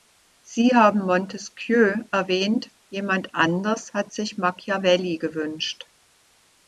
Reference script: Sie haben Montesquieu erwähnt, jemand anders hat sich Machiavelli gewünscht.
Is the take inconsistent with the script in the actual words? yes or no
no